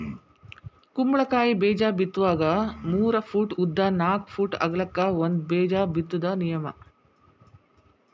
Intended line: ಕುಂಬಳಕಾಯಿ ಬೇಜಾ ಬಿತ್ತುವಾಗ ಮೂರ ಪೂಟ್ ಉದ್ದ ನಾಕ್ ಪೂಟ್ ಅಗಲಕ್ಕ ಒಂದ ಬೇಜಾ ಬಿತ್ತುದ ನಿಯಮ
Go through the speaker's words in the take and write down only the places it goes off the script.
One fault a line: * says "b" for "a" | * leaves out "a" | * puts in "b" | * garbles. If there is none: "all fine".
all fine